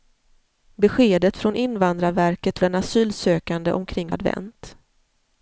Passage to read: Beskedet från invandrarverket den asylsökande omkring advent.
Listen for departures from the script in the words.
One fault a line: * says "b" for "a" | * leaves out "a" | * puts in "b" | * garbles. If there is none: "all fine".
all fine